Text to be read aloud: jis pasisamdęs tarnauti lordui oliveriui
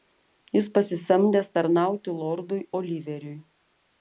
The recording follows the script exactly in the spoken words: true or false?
true